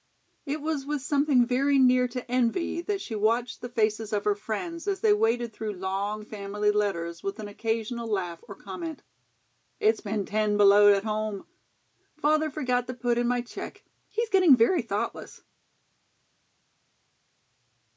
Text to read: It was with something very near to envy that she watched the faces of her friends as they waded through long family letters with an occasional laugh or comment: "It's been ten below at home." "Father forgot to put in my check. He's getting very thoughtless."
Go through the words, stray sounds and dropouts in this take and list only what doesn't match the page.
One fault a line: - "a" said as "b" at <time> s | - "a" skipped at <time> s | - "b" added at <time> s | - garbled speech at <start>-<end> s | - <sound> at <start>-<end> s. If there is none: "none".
none